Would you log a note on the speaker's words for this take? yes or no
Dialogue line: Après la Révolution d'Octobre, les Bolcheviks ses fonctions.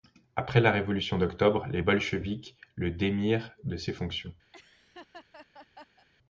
yes